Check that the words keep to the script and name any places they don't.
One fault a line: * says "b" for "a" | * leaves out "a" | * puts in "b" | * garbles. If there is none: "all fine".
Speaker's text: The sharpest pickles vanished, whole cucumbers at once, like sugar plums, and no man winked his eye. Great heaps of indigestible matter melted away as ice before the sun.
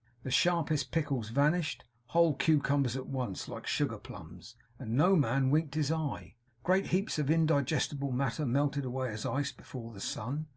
all fine